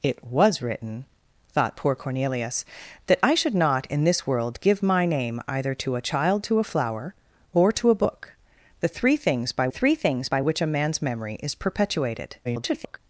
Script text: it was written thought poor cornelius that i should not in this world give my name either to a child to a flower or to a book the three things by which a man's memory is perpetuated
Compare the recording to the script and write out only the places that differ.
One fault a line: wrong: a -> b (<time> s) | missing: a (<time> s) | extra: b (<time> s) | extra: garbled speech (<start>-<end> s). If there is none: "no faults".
extra: three things by (9.7 s)
extra: garbled speech (12.4-13.0 s)